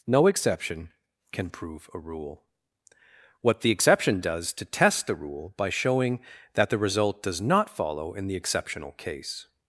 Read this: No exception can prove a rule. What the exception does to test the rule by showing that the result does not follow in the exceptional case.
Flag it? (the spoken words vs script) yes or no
no